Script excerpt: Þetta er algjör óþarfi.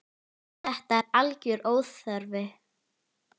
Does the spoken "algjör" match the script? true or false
true